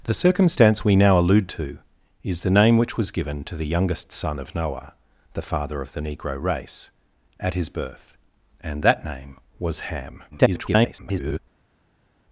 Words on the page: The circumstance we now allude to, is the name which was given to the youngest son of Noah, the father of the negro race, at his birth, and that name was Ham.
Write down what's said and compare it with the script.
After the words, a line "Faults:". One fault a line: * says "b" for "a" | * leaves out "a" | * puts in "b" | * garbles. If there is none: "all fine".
The circumstance we now allude to, is the name which was given to the youngest son of Noah, the father of the negro race, at his birth, and that name was Ham. [garbled]
Faults:
* garbles